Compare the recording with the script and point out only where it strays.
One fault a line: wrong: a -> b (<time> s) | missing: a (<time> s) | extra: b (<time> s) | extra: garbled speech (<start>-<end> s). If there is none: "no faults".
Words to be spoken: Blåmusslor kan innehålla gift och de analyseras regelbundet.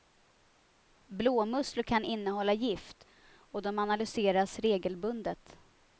no faults